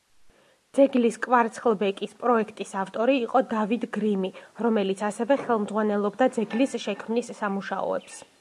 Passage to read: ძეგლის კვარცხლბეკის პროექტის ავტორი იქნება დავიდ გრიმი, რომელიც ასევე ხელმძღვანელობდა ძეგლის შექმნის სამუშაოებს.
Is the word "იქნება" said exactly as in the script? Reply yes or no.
no